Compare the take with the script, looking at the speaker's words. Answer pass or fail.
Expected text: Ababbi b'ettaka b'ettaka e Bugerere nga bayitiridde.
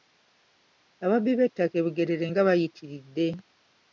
fail